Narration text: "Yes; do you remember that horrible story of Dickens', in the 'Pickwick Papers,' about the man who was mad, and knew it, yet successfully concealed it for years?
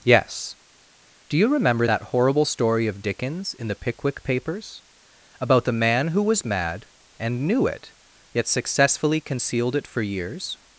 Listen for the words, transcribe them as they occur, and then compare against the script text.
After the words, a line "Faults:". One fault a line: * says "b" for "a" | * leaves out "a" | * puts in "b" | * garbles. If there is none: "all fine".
"Yes; do you remember that horrible story of Dickens', in the 'Pickwick Papers,' about the man who was mad, and knew it, yet successfully concealed it for years?
Faults:
all fine